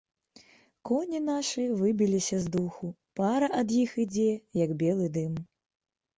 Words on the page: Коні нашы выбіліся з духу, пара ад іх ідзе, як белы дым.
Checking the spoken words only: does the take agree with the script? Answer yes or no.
yes